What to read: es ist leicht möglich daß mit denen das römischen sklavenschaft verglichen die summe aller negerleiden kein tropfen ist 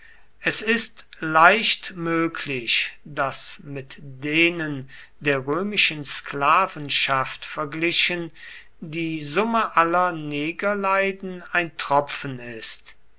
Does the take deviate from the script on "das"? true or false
true